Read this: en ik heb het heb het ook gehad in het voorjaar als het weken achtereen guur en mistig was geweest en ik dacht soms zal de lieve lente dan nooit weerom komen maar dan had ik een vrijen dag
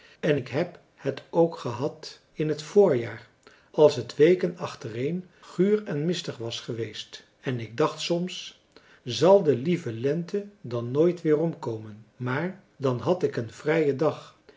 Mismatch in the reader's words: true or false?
true